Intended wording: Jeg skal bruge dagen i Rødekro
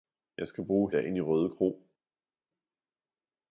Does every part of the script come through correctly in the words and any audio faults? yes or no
yes